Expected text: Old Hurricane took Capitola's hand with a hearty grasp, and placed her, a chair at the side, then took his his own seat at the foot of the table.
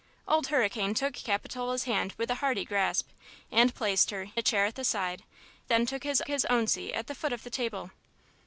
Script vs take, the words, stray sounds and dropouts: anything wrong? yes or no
no